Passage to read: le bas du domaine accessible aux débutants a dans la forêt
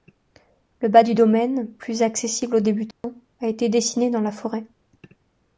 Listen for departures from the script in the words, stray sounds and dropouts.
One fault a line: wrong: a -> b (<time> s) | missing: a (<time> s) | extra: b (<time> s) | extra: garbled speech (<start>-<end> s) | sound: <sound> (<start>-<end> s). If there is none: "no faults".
extra: plus (1.7 s)
sound: dropout (2.9-3.0 s)
extra: été dessiné (3.5 s)